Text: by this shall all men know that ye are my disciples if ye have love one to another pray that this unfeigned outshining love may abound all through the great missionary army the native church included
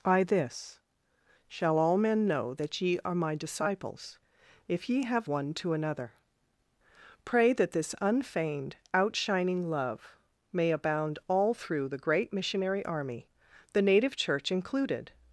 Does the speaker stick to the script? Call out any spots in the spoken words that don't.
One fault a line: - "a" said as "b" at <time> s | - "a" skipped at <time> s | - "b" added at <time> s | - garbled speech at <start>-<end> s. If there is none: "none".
- "love" skipped at 5.3 s